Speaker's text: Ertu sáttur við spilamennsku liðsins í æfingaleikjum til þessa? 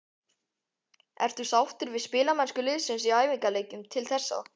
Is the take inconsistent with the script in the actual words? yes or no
no